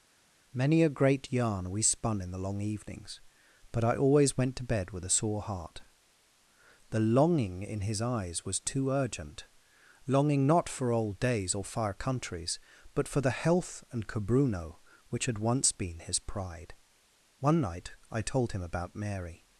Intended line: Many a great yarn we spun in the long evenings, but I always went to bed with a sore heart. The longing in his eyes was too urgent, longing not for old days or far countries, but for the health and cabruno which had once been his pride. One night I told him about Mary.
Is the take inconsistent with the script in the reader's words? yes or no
no